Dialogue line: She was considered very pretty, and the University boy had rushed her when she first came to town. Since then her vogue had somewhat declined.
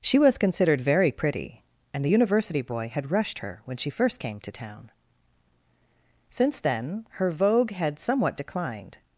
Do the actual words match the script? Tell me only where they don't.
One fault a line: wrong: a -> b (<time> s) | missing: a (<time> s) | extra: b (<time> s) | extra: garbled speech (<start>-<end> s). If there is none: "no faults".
no faults